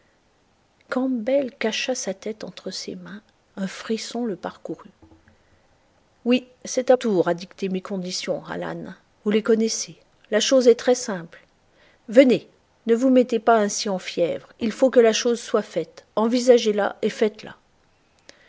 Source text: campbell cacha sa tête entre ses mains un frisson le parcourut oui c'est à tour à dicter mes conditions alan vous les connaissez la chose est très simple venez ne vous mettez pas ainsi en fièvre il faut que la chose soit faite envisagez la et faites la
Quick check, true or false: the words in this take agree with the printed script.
true